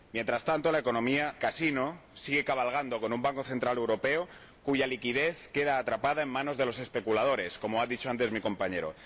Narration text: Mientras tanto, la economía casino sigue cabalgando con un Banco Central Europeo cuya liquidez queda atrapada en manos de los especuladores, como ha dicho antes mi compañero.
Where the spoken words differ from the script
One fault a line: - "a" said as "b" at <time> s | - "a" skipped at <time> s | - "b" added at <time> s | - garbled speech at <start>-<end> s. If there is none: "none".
none